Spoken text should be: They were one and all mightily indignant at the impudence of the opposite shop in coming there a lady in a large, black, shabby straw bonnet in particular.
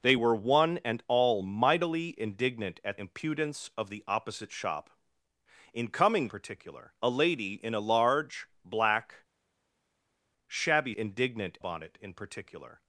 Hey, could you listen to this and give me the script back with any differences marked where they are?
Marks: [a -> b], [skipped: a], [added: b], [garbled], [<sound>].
They were one and all mightily indignant at [skipped: the] impudence of the opposite shop in coming [there -> particular] a lady in a large, black, shabby [straw -> indignant] bonnet in particular.